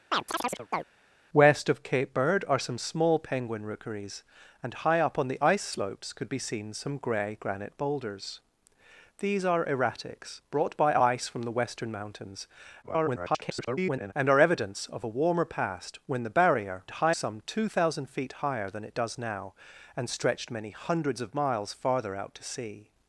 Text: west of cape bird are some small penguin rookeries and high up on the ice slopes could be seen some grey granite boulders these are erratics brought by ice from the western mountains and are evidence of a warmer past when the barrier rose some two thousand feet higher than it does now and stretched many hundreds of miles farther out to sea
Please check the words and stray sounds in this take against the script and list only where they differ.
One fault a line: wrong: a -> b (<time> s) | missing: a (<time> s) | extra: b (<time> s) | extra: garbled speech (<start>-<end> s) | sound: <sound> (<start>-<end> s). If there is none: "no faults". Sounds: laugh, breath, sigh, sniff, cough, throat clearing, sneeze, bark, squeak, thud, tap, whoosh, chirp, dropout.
sound: chirp (0.1-0.9 s)
extra: garbled speech (12.8-14.1 s)
wrong: rose -> high (16.9 s)